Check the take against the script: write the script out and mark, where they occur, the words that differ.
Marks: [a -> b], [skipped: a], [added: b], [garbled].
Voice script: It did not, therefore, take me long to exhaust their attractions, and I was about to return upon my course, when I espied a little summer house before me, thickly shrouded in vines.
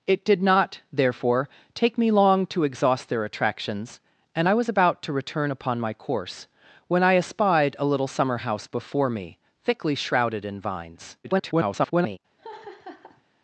It did not, therefore, take me long to exhaust their attractions, and I was about to return upon my course, when I espied a little summer house before me, thickly shrouded in vines. [garbled]